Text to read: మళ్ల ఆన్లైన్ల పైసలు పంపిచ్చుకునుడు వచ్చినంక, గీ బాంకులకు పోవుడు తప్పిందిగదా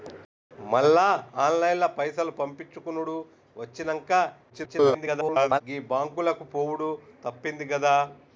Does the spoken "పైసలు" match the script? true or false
true